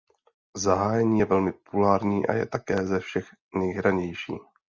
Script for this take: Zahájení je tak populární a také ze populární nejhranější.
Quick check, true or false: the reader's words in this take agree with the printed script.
false